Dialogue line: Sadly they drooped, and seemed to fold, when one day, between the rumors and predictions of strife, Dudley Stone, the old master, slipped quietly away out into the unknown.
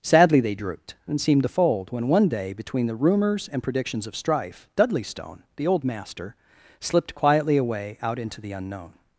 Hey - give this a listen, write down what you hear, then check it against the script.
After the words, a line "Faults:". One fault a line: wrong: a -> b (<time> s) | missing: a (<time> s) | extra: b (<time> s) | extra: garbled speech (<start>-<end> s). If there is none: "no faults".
Sadly they drooped, and seemed to fold, when one day, between the rumors and predictions of strife, Dudley Stone, the old master, slipped quietly away out into the unknown.
Faults:
no faults